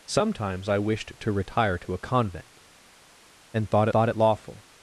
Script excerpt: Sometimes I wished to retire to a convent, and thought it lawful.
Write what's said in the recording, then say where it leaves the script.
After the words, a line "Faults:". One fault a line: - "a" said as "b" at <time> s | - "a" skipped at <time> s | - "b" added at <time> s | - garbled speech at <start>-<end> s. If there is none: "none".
Sometimes I wished to retire to a convent, and thought thought it lawful.
Faults:
- "thought" added at 3.9 s